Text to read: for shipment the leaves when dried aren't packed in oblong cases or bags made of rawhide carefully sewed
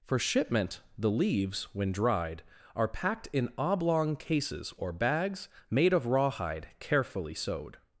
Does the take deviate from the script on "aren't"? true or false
true